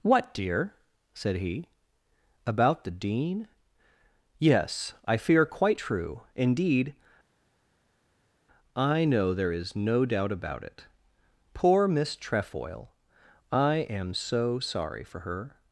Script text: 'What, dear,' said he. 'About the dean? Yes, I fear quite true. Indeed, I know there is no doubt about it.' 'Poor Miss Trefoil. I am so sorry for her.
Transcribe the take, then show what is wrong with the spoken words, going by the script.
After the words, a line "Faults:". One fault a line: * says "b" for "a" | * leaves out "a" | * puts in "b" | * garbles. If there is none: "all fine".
'What, dear,' said he. 'About the dean? Yes, I fear quite true. Indeed, I know there is no doubt about it.' 'Poor Miss Trefoil. I am so sorry for her.
Faults:
all fine